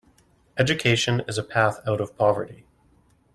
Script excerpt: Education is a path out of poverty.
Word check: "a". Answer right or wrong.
right